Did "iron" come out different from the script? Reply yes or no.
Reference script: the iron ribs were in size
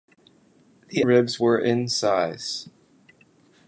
yes